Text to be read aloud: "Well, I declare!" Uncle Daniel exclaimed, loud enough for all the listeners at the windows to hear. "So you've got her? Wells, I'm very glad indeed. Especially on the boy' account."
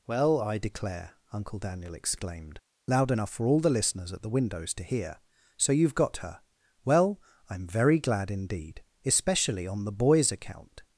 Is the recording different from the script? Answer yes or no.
yes